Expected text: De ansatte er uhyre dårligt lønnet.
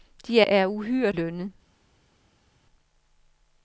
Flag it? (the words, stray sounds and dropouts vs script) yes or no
yes